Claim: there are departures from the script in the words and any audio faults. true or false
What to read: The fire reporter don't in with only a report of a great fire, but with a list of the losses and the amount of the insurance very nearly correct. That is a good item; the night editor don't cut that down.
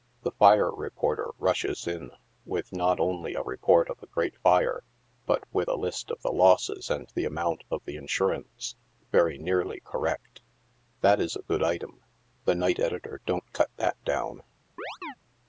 true